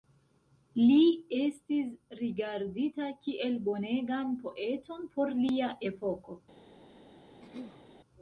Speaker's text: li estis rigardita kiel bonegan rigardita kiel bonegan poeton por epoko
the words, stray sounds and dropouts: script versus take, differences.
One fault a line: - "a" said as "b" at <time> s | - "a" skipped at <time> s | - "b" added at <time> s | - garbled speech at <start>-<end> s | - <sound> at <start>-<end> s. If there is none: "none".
- "rigardita kiel bonegan" skipped at 4.3 s
- "lia" added at 5.4 s
- throat clearing at 7.4-7.9 s